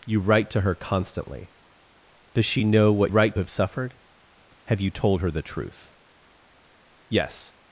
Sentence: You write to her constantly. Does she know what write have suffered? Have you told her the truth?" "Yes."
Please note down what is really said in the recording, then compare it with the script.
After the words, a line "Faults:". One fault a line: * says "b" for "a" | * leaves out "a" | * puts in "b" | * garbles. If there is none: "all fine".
You write to her constantly. Does she know what write have suffered? Have you told her the truth?" "Yes."
Faults:
all fine